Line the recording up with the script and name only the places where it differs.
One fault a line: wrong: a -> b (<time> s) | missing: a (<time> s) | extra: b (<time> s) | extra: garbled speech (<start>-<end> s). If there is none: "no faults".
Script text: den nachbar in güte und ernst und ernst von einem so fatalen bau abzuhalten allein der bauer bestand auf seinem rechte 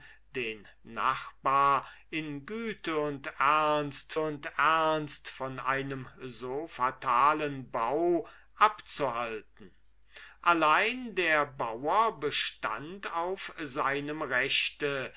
no faults